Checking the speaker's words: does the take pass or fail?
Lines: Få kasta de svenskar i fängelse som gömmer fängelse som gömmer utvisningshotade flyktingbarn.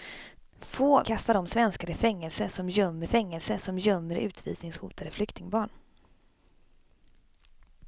pass